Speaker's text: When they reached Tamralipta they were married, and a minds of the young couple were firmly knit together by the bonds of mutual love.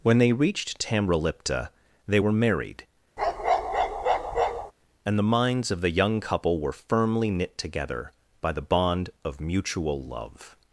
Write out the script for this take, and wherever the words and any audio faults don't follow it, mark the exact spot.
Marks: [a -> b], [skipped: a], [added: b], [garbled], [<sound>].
When they reached Tamralipta they were married, [bark] and [a -> the] minds of the young couple were firmly knit together by the [bonds -> bond] of mutual love.